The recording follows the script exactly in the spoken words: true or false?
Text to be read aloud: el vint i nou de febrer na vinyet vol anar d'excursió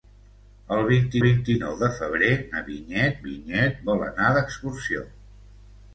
false